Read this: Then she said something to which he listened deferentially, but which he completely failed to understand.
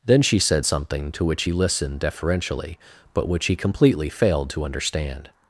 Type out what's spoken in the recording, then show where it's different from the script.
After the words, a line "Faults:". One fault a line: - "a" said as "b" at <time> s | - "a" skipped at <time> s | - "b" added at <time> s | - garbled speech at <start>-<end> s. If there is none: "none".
Then she said something to which he listened deferentially, but which he completely failed to understand.
Faults:
none